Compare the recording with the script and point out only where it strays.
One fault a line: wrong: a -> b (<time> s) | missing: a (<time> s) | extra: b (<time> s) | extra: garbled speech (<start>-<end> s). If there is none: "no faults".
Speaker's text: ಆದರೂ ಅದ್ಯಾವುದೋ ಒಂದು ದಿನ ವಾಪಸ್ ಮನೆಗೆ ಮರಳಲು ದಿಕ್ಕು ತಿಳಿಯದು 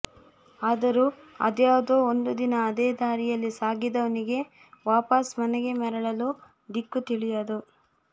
extra: ಅದೇ ದಾರಿಯಲ್ಲಿ ಸಾಗಿದವನಿಗೆ (2.7 s)